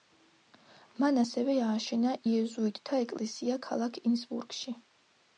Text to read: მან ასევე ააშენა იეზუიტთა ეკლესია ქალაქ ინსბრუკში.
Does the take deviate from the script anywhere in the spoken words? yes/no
no